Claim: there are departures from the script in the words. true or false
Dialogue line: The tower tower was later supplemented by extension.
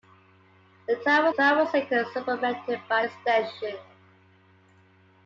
false